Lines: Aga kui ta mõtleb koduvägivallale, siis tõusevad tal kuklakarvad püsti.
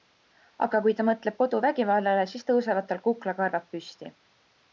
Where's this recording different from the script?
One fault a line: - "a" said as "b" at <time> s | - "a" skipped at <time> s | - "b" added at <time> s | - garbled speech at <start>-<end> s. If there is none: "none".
none